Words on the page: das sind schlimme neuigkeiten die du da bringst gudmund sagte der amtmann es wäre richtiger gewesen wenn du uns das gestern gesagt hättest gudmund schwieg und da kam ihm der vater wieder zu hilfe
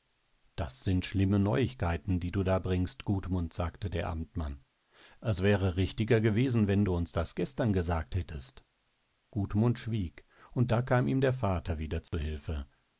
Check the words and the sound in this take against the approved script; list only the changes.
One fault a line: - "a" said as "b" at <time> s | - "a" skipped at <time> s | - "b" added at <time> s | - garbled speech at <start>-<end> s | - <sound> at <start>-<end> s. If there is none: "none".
- dropout at 12.1-12.1 s